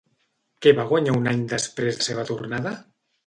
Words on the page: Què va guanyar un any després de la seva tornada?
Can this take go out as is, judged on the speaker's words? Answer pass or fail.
fail